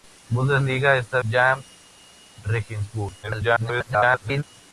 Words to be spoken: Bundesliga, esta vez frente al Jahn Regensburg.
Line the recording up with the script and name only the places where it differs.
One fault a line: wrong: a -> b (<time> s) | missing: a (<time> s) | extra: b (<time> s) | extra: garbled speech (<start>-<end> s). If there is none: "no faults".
missing: vez frente al (1.2 s)
extra: garbled speech (3.2-4.4 s)